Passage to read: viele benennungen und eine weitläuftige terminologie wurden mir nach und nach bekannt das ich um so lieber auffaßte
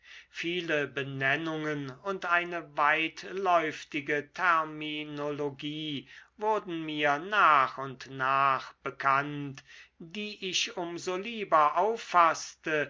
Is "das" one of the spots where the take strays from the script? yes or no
yes